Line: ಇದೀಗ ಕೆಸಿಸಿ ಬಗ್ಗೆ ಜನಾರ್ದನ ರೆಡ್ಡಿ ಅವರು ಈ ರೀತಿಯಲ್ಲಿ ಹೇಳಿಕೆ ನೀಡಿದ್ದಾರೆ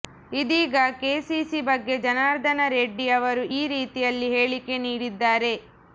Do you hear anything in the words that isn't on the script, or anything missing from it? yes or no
no